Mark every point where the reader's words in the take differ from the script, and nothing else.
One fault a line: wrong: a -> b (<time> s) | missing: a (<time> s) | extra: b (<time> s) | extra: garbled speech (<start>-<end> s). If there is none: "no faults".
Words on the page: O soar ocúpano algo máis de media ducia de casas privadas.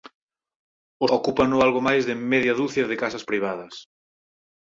missing: soar (1.1 s)